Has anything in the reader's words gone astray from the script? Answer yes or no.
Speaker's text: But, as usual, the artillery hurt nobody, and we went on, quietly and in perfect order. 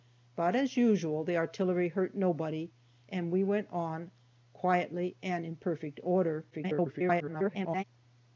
yes